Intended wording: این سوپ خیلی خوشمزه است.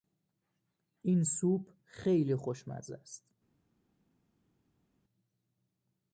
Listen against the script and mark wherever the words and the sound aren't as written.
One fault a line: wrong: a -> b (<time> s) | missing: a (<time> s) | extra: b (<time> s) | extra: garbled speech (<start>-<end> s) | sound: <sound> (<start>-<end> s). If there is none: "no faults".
no faults